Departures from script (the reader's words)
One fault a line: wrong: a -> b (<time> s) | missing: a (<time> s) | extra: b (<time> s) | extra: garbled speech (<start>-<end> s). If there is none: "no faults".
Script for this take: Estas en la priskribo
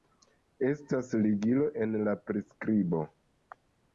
extra: ligilo (1.2 s)